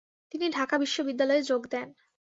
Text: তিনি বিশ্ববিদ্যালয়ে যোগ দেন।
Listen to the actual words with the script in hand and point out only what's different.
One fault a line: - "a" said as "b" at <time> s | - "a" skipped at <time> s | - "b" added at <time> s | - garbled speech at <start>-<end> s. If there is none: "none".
- "ঢাকা" added at 0.5 s